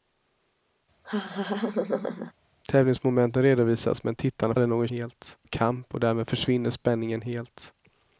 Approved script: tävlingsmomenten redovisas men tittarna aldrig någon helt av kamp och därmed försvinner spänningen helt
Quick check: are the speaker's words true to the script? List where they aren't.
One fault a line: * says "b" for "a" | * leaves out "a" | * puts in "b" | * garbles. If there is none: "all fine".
all fine